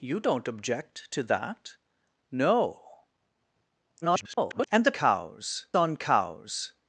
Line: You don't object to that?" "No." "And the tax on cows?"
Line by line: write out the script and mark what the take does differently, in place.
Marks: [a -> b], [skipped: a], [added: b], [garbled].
You don't object to that?" "No." [garbled] "And the [tax -> cows] on cows?"